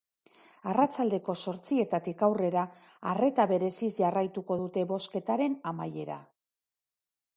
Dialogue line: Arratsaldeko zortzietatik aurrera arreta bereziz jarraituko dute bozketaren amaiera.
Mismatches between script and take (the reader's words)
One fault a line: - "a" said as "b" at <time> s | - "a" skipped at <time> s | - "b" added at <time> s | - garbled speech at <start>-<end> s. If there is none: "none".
none